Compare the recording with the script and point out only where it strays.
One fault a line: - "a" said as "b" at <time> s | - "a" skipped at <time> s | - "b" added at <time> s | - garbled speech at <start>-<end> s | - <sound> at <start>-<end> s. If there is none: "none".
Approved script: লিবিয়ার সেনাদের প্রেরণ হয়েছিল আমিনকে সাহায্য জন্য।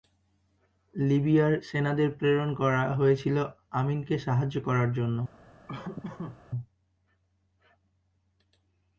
- "করা" added at 2.5 s
- "করার" added at 4.6 s
- laugh at 5.7-6.4 s